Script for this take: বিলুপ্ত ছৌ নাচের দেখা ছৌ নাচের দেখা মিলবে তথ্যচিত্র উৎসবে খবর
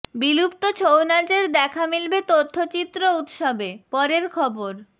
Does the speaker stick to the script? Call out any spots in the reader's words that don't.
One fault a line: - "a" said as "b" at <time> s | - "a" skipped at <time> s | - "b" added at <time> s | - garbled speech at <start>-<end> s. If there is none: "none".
- "ছৌ নাচের দেখা" skipped at 1.8 s
- "পরের" added at 3.9 s